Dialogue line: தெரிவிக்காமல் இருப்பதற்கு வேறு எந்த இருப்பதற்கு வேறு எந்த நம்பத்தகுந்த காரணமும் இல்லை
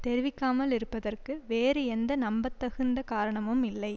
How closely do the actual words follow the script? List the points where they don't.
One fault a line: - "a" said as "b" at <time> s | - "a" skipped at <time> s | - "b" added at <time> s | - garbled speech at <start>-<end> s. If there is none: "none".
- "இருப்பதற்கு வேறு எந்த" skipped at 2.1 s